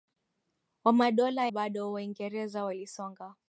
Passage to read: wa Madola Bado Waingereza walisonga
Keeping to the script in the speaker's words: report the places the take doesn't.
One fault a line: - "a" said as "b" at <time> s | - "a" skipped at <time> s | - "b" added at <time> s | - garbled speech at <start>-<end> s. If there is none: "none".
none